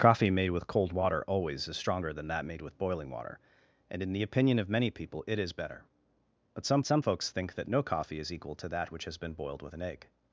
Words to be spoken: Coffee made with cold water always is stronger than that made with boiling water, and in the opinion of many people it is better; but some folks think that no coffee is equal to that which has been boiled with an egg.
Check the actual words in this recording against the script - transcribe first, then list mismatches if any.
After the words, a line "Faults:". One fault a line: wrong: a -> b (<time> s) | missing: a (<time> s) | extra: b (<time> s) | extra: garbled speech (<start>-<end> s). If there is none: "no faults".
Coffee made with cold water always is stronger than that made with boiling water, and in the opinion of many people it is better; but some some folks think that no coffee is equal to that which has been boiled with an egg.
Faults:
extra: some (6.9 s)